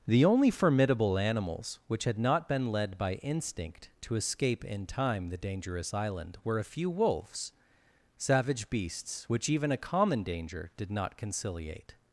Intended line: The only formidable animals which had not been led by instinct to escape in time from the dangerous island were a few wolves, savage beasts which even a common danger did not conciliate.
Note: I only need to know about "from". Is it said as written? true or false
false